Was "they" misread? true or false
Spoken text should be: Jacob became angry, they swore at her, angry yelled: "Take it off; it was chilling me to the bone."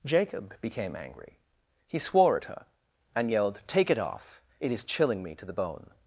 true